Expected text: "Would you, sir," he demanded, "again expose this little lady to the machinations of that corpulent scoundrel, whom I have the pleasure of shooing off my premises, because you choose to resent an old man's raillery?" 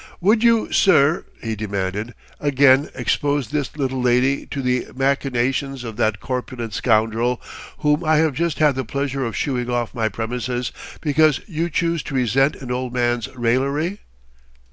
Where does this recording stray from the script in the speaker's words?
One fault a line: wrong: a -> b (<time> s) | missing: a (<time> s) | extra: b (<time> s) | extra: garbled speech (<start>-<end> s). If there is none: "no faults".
extra: just had (8.3 s)